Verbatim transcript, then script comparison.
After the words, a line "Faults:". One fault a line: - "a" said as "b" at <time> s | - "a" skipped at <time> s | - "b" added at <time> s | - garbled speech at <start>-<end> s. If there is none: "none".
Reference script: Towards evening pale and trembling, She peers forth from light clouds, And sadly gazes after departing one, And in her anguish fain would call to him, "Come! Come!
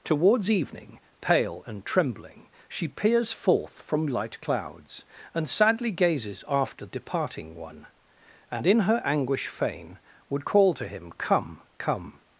Towards evening pale and trembling, She peers forth from light clouds, And sadly gazes after departing one, And in her anguish fain would call to him, "Come! Come!
Faults:
none